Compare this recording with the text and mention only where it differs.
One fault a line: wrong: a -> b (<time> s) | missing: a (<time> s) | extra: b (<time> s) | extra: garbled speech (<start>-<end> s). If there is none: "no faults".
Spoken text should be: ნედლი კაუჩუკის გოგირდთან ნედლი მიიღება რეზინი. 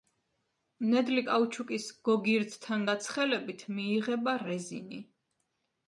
wrong: ნედლი -> გაცხელებით (2.9 s)